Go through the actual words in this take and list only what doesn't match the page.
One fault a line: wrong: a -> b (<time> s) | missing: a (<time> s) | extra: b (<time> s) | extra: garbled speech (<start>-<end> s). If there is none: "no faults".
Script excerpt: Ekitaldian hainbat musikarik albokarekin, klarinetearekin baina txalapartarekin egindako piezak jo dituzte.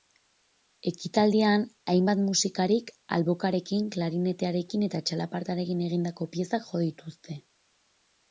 wrong: baina -> eta (4.9 s)